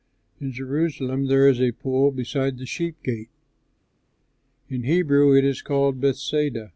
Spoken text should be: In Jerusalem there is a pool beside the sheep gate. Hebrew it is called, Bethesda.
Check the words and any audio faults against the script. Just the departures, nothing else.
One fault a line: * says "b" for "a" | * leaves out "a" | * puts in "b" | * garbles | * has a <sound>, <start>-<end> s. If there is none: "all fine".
* puts in "In"